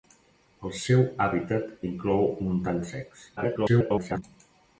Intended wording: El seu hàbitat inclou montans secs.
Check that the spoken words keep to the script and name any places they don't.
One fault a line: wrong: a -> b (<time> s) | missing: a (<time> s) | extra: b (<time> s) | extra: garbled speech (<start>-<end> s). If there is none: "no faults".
extra: garbled speech (3.4-4.2 s)